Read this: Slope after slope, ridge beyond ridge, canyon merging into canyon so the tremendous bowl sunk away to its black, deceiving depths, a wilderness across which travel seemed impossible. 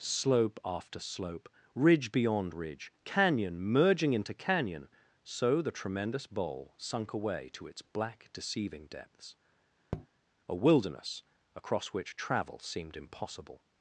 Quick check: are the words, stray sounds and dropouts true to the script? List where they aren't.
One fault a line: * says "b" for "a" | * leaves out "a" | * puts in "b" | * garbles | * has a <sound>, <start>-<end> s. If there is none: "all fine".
* has a tap, 9.9-10.1 s